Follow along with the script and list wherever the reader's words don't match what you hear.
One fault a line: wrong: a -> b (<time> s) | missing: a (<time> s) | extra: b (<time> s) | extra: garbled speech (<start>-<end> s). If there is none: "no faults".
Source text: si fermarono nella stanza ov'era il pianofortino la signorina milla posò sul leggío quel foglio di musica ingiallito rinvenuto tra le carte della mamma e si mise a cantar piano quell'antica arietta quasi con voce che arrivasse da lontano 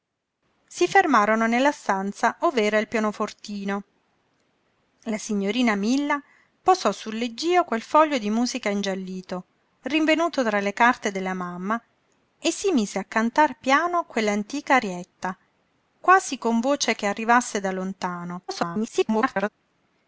extra: garbled speech (18.5-19.5 s)